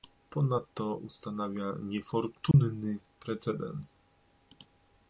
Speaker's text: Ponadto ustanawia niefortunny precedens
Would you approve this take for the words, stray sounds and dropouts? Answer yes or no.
no